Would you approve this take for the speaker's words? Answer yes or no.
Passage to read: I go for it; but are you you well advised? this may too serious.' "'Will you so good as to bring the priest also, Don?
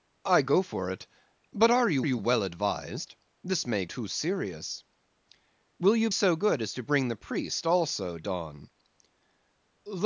yes